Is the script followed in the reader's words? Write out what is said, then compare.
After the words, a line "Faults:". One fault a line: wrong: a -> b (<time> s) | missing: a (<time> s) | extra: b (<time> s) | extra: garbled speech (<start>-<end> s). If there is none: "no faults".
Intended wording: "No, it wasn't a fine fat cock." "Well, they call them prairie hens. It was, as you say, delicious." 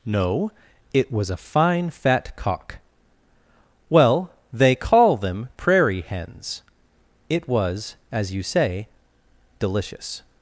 "No, it was a fine fat cock." "Well, they call them prairie hens. It was, as you say, delicious."
Faults:
wrong: wasn't -> was (1.1 s)